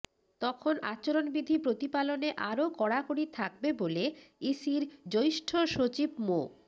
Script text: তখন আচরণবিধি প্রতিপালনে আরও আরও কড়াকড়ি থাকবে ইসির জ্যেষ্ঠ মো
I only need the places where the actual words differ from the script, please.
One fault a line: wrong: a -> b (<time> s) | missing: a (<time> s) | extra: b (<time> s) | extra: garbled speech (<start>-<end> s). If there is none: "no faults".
missing: আরও (2.6 s)
extra: বলে (3.8 s)
extra: সচিব (5.7 s)